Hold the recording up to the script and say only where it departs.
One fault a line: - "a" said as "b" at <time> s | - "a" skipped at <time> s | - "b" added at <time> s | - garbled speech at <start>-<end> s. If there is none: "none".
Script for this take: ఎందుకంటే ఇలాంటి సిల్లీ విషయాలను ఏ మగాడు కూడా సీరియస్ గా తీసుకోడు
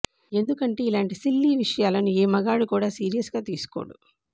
none